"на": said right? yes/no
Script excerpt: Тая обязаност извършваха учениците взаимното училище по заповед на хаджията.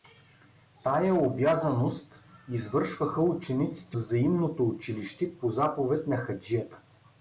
yes